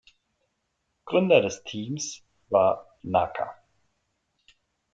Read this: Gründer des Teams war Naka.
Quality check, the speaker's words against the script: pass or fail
pass